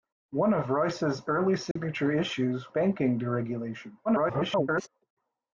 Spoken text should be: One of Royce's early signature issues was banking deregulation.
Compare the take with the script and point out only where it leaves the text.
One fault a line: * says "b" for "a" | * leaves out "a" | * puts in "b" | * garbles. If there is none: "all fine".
* leaves out "was"
* garbles